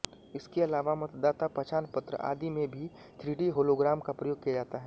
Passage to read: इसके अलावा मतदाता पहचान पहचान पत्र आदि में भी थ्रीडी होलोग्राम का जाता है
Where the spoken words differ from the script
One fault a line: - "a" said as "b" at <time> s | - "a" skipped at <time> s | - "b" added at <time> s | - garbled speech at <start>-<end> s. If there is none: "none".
- "पहचान" skipped at 1.9 s
- "प्रयोग किया" added at 4.1 s